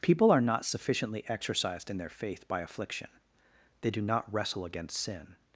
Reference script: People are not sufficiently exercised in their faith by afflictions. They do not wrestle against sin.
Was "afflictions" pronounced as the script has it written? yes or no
no